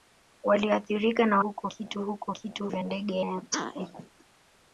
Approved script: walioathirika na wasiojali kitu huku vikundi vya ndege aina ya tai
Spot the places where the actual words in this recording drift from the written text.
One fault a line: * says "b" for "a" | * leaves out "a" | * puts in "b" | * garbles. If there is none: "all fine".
* says "huku" for "wasiojali"
* says "kitu" for "vikundi"
* leaves out "aina"